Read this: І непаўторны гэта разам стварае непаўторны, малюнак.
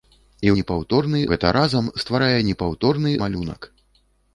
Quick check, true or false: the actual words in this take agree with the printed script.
true